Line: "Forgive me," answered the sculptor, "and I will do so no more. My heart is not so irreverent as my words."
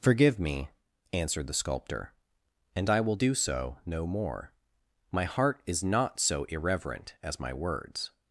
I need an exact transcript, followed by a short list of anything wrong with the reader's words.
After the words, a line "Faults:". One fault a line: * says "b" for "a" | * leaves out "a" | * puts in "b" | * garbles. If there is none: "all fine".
"Forgive me," answered the sculptor, "and I will do so no more. My heart is not so irreverent as my words."
Faults:
all fine